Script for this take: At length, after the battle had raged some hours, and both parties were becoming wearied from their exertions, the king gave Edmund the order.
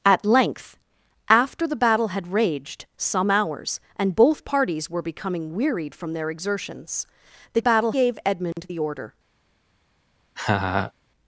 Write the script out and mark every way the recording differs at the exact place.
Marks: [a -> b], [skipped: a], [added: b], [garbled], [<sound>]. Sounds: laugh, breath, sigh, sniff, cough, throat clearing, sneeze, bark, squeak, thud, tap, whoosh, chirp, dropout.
At length, after the battle had raged some hours, and both parties were becoming wearied from their exertions, the [king -> battle] gave Edmund [dropout] the order. [laugh]